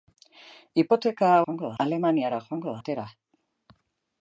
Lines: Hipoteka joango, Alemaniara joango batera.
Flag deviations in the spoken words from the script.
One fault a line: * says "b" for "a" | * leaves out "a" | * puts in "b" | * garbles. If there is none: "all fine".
all fine